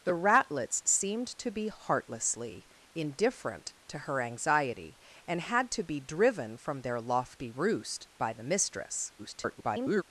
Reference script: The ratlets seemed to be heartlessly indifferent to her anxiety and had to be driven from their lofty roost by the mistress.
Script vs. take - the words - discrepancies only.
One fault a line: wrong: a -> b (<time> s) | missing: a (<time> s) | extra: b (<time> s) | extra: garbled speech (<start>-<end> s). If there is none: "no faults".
extra: garbled speech (9.2-10.0 s)